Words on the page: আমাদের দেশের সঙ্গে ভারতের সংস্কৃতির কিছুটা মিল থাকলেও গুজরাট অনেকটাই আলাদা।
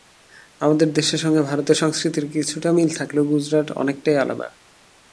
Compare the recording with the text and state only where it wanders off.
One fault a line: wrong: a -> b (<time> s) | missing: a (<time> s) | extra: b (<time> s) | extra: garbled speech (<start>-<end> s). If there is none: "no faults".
no faults